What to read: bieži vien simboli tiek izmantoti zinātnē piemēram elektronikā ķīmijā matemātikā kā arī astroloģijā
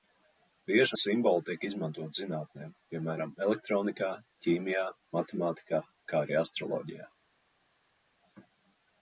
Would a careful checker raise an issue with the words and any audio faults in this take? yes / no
yes